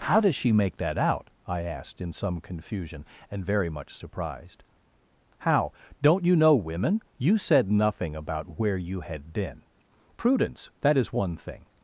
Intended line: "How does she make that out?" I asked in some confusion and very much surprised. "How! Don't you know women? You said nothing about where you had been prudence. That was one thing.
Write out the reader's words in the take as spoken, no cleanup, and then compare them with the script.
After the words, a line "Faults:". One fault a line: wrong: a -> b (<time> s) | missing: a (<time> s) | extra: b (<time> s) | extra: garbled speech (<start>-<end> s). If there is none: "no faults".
"How does she make that out?" I asked in some confusion and very much surprised. "How! Don't you know women? You said nothing about where you had been prudence. That is one thing.
Faults:
wrong: was -> is (11.0 s)